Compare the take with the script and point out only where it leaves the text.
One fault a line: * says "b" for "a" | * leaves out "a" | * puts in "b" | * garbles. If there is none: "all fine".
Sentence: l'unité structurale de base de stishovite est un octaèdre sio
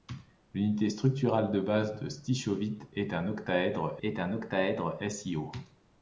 * puts in "est un octaèdre"